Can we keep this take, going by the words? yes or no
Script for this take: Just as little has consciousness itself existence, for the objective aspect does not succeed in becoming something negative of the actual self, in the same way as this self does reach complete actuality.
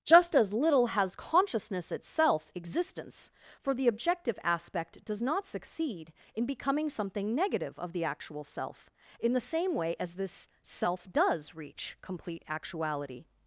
yes